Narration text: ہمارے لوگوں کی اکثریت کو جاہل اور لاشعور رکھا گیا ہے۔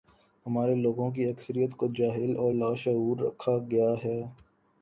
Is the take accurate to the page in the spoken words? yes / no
yes